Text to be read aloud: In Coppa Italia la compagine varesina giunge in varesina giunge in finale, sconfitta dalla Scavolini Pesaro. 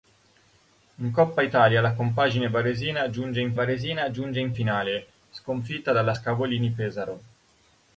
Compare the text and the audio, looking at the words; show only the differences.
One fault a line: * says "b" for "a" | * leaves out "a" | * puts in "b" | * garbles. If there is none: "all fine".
all fine